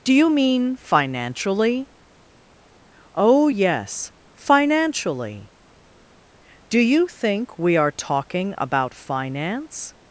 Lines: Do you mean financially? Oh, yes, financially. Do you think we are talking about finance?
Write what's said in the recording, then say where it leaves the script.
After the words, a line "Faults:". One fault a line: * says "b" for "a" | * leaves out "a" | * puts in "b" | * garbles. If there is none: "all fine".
Do you mean financially? Oh, yes, financially. Do you think we are talking about finance?
Faults:
all fine